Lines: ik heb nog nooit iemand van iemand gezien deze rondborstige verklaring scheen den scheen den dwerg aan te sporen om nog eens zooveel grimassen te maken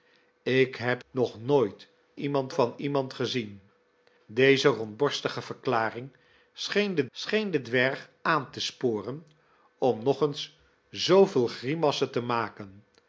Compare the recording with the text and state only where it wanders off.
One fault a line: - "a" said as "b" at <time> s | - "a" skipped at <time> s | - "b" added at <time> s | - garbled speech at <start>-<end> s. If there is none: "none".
none